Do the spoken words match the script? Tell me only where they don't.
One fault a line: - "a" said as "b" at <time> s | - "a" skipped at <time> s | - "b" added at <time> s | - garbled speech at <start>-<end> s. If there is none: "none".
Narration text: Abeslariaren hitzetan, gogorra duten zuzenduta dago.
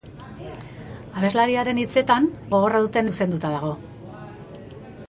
none